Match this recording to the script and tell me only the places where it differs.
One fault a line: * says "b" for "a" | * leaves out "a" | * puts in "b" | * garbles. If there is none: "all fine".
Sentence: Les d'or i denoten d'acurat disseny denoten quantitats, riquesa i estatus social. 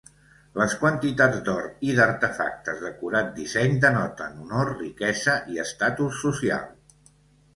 * puts in "quantitats"
* says "d'artefactes" for "denoten"
* says "honor" for "quantitats"